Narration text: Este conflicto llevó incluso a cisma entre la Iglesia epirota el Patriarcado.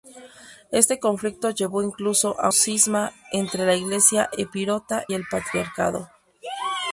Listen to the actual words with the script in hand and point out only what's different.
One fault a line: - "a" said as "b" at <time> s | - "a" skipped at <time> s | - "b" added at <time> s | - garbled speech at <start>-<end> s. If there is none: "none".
none